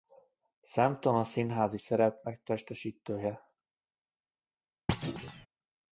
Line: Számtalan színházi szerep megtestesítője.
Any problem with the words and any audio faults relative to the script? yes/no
yes